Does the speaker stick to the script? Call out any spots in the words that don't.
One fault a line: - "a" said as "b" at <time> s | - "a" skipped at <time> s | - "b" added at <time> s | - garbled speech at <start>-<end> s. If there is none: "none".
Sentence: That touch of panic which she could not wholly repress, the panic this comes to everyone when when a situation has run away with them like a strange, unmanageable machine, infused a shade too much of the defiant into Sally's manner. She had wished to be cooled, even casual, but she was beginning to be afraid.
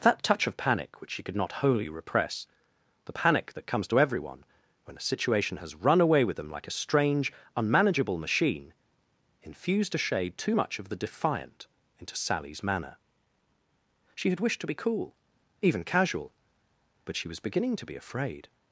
- "this" said as "that" at 3.5 s
- "when" skipped at 5.0 s
- "cooled" said as "cool" at 14.7 s